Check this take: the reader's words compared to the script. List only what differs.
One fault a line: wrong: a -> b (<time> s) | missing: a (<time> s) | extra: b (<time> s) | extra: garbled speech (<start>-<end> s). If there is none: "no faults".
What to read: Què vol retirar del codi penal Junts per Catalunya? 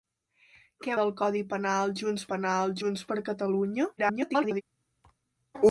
wrong: vol retirar del codi -> del codi penal Junts (1.0 s)
extra: garbled speech (4.0-4.6 s)